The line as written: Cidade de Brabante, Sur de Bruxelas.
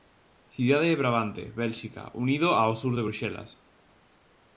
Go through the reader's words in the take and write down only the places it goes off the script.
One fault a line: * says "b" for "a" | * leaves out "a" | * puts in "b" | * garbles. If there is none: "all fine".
* puts in "Bélxica unido ao"